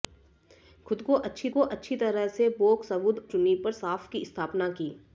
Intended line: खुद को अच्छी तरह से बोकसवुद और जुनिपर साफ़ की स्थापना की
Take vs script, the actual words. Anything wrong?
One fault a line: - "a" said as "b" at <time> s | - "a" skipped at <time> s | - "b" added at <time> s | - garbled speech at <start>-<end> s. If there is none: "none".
- "को अच्छी" added at 1.5 s
- "और" skipped at 3.3 s